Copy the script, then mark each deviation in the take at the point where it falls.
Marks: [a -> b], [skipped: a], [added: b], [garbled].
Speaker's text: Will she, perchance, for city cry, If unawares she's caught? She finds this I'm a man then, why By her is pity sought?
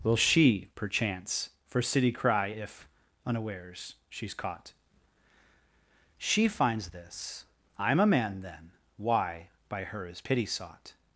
Will she, perchance, for city cry, If unawares she's caught? She finds this I'm a man then, why By her is pity sought?